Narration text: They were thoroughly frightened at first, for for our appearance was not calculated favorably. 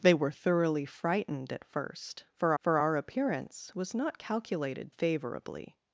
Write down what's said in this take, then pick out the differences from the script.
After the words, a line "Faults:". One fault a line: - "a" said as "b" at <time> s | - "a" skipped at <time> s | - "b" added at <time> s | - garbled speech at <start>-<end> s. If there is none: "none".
They were thoroughly frightened at first, for for our appearance was not calculated favorably.
Faults:
none